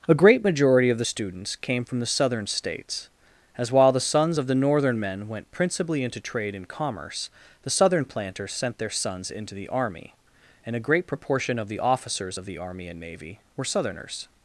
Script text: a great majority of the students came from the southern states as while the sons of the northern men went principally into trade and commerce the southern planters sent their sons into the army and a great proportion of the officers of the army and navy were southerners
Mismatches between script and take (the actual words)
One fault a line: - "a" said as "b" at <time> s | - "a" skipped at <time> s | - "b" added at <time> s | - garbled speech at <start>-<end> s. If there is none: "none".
none